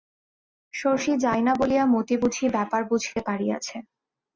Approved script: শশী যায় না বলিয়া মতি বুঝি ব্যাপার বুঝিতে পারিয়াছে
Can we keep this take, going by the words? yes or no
yes